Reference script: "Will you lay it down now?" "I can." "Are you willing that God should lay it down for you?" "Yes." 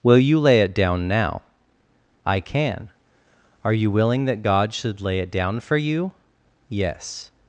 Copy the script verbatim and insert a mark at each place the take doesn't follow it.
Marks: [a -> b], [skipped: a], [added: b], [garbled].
"Will you lay it down now?" "I can." "Are you willing that God should lay it down for you?" "Yes."